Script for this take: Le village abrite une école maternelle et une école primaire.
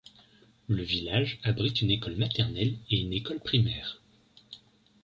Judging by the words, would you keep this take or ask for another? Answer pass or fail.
pass